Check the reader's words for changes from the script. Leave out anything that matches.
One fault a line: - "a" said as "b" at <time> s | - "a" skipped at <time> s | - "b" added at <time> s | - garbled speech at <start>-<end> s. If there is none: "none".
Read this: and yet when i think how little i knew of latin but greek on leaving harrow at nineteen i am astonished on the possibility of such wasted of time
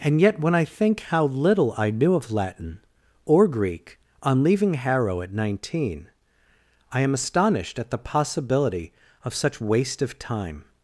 - "but" said as "or" at 3.2 s
- "on" said as "at" at 7.8 s
- "wasted" said as "waste" at 9.6 s